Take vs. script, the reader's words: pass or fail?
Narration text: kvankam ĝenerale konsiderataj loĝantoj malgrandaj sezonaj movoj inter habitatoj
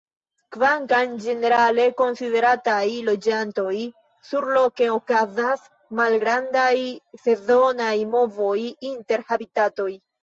fail